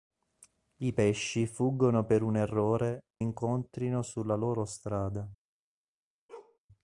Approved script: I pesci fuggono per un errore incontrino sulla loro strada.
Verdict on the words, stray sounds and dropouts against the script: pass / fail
fail